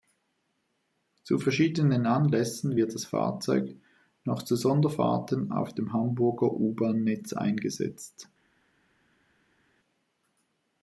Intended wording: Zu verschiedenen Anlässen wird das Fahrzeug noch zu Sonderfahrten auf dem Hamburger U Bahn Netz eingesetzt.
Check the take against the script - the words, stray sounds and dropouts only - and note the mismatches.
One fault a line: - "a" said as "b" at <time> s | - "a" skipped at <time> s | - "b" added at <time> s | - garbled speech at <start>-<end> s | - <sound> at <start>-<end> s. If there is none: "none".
none